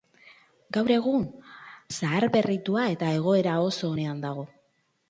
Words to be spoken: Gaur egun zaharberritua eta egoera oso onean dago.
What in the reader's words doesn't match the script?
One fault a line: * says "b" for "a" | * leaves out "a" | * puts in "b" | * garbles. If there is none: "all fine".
all fine